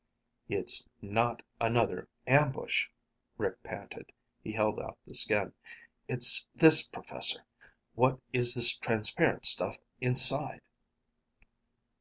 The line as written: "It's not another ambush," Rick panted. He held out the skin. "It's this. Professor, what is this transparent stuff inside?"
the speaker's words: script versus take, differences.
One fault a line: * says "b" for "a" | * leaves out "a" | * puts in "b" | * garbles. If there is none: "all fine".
all fine